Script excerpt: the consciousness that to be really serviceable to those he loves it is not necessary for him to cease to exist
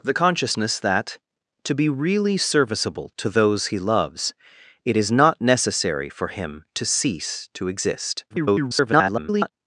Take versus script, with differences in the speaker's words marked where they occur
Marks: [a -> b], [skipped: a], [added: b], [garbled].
the consciousness that to be really serviceable to those he loves it is not necessary for him to cease to exist [garbled]